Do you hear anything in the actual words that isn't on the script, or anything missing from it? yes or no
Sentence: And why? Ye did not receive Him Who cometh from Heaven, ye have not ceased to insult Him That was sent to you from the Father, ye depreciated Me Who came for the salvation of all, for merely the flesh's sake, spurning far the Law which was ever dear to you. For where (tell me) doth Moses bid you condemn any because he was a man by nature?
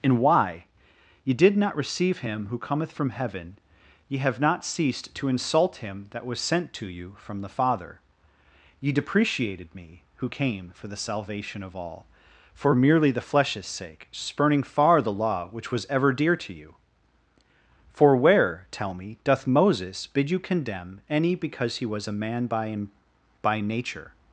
yes